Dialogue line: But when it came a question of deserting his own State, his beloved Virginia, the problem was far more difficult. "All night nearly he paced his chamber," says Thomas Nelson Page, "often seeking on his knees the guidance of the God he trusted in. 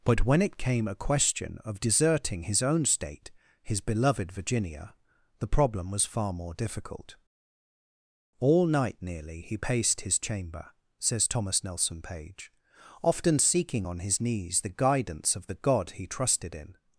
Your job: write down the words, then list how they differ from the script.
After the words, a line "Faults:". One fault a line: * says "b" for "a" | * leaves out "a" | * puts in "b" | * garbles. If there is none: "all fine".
But when it came a question of deserting his own State, his beloved Virginia, the problem was far more difficult. "All night nearly he paced his chamber," says Thomas Nelson Page, "often seeking on his knees the guidance of the God he trusted in.
Faults:
all fine